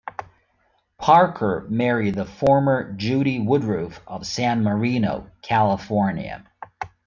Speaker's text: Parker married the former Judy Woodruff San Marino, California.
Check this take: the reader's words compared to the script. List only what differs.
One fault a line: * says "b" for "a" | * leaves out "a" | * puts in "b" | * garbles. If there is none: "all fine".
* puts in "of"